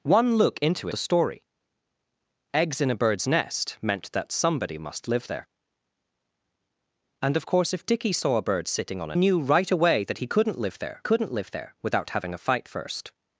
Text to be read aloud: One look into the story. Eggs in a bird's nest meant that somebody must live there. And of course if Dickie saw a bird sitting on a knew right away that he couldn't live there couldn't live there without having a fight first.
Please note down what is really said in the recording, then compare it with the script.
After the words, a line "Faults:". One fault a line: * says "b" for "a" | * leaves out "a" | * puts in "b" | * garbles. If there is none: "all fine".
One look into the story. Eggs in a bird's nest meant that somebody must live there. And of course if Dickie saw a bird sitting on a knew right away that he couldn't live there couldn't live there without having a fight first.
Faults:
all fine